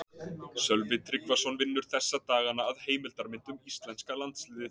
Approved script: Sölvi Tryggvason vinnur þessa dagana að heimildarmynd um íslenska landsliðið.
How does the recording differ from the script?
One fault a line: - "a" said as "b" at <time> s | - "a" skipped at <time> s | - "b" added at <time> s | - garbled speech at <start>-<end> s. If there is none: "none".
none